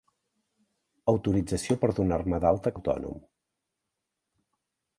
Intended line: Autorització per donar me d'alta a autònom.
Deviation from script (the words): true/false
false